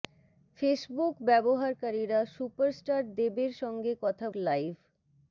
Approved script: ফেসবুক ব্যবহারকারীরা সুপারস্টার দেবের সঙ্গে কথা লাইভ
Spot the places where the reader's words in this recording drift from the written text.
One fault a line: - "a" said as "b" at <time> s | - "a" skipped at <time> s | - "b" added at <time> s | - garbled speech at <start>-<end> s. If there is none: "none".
none